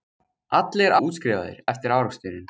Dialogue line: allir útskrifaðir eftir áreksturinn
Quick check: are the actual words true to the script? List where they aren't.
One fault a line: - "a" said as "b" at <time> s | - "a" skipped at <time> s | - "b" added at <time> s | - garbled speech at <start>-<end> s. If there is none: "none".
none